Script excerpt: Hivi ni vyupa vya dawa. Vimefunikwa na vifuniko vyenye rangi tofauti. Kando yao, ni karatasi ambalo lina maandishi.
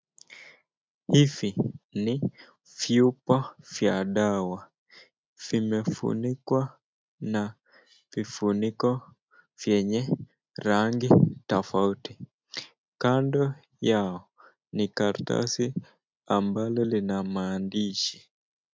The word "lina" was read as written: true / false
true